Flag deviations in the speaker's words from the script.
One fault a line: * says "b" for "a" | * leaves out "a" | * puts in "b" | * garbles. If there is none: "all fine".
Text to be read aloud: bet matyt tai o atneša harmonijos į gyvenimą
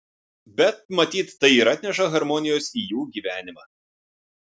* says "ir" for "o"
* puts in "jų"